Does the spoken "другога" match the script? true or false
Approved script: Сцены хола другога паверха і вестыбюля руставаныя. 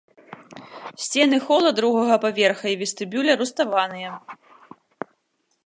true